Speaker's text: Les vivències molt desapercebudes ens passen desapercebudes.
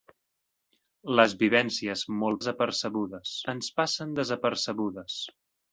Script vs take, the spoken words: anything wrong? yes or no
no